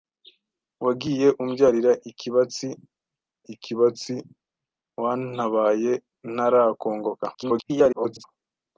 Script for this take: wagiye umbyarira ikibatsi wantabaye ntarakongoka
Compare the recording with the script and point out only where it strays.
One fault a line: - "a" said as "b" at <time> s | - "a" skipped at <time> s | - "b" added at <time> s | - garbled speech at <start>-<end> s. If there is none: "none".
- "ikibatsi" added at 3.5 s
- garbled speech at 7.3-8.2 s